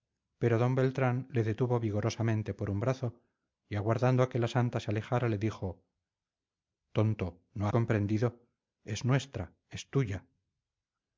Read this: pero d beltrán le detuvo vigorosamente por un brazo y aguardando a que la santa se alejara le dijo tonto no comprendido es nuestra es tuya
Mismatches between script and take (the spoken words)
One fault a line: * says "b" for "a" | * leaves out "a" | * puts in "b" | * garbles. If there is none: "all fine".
all fine